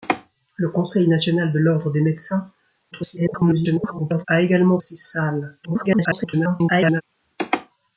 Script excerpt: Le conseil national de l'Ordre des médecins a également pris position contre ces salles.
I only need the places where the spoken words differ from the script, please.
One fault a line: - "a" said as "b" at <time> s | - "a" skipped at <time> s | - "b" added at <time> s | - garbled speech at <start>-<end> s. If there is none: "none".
- garbled speech at 2.9-4.3 s
- "pris position contre" skipped at 4.8 s
- garbled speech at 5.6-7.0 s